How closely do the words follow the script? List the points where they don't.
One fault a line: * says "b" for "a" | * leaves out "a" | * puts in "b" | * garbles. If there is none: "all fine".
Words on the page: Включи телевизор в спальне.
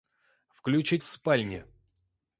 * leaves out "телевизор"